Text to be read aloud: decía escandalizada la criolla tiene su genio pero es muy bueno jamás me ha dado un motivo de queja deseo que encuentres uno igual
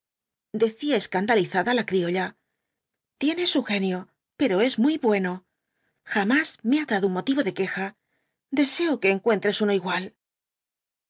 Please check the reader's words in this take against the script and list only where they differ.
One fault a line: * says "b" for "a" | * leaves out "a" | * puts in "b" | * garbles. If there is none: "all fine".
all fine